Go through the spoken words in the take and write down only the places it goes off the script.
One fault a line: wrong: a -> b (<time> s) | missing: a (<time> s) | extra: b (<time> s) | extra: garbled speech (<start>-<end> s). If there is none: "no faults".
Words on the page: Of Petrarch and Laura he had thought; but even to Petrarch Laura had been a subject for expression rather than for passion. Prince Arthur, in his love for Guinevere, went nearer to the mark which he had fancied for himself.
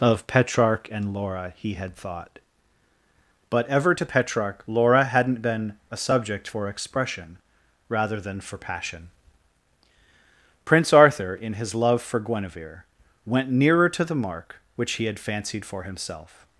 wrong: even -> ever (3.7 s)
wrong: had -> hadn't (5.0 s)